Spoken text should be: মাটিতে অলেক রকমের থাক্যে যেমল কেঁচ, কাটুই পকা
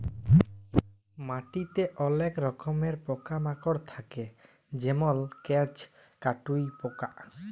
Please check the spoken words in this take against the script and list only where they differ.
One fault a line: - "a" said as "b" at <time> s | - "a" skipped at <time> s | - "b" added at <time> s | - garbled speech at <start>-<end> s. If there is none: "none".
- "পকা মাকড়" added at 3.0 s